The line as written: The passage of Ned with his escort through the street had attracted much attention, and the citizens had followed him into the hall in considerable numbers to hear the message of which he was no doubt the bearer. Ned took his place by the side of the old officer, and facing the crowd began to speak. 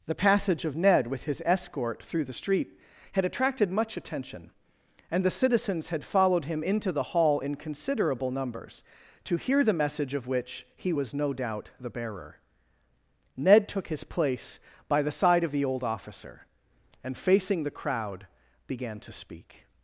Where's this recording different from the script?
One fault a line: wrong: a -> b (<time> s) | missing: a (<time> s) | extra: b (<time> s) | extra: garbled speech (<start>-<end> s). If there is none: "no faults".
no faults